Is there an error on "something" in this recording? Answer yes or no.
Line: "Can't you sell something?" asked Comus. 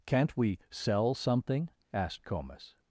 no